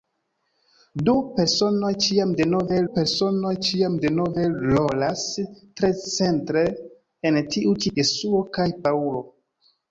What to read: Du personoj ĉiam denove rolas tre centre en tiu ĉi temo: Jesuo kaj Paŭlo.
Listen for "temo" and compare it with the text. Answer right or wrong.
wrong